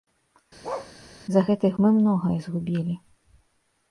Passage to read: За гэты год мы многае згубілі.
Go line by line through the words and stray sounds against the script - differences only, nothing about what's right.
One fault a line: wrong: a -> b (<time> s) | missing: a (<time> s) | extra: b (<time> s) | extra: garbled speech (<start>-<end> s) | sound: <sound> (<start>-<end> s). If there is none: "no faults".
sound: bark (0.6-0.9 s)
missing: год (1.7 s)